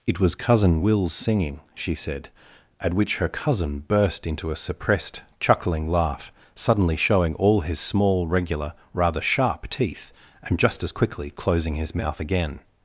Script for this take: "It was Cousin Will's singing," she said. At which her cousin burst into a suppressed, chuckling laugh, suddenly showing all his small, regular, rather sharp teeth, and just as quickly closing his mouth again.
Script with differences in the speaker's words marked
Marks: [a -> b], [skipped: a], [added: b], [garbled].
"It was Cousin Will's singing," she said. At which her cousin burst into a suppressed, chuckling laugh, suddenly showing all his small, regular, rather sharp teeth, and just as quickly closing his mouth again.